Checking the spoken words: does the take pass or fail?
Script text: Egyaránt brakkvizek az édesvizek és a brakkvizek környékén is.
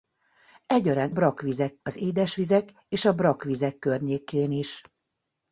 pass